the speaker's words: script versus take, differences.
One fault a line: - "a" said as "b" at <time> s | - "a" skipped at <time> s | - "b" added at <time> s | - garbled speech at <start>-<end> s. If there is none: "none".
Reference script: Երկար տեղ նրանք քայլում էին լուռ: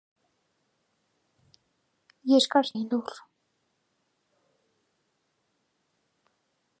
- "տեղ նրանք քայլում" skipped at 2.7 s